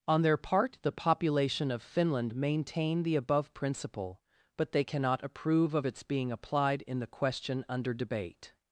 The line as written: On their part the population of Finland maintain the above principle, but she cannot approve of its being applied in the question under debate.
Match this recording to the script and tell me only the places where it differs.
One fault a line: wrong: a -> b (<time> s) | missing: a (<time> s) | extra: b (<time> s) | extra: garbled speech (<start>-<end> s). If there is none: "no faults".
wrong: she -> they (4.7 s)